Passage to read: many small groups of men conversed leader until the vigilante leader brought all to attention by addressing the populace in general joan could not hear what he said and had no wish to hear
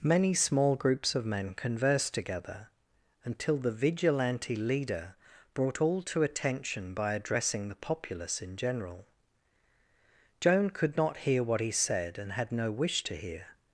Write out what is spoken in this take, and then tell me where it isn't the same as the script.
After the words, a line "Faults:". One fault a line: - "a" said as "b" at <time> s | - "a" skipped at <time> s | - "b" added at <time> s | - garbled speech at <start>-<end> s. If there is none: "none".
many small groups of men conversed together until the vigilante leader brought all to attention by addressing the populace in general joan could not hear what he said and had no wish to hear
Faults:
- "leader" said as "together" at 2.1 s